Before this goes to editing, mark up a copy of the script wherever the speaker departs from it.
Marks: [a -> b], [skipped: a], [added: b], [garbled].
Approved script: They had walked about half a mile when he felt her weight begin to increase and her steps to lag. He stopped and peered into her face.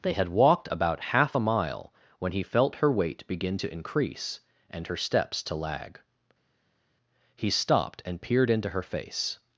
They had walked about half a mile when he felt her weight begin to increase and her steps to lag. He stopped and peered into her face.